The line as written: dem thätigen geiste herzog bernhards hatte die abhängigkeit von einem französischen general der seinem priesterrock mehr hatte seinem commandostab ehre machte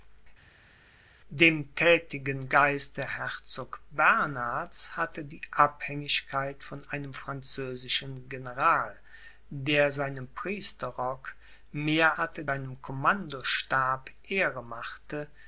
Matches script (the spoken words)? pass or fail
pass